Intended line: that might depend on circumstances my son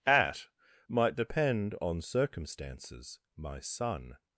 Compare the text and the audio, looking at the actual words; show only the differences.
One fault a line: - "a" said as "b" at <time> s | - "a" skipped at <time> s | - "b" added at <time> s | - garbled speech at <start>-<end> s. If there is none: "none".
- "that" said as "at" at 0.1 s